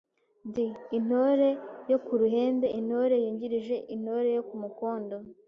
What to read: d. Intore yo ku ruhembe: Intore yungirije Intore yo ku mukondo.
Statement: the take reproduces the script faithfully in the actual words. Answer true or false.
true